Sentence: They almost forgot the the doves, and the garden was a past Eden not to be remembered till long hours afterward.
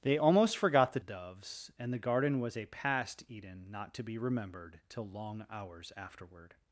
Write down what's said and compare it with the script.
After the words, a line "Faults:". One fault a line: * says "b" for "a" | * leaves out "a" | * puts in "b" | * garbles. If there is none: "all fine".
They almost forgot the the doves, and the garden was a past Eden not to be remembered till long hours afterward.
Faults:
all fine